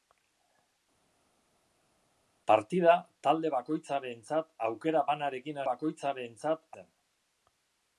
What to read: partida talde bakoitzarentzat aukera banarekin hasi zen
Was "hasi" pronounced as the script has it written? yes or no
no